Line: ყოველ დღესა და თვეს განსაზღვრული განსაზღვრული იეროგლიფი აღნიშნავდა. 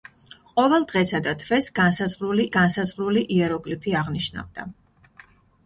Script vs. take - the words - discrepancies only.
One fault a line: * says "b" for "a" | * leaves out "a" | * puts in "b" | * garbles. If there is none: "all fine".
all fine